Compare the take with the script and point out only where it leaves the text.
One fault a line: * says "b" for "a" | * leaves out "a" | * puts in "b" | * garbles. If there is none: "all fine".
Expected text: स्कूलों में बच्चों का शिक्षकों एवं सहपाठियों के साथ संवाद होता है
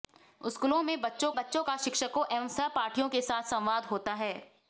* puts in "बच्चों"